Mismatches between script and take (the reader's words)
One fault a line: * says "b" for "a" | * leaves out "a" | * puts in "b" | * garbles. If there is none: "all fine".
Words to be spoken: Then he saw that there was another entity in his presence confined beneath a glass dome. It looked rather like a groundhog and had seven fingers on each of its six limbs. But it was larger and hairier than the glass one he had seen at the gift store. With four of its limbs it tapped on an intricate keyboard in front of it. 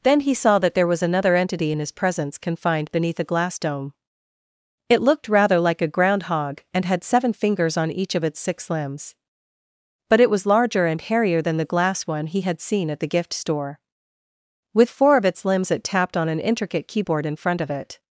all fine